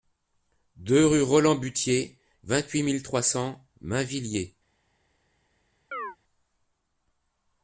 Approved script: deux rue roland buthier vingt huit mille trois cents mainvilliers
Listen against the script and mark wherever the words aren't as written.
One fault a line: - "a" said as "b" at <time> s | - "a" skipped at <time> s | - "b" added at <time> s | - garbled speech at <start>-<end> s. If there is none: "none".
none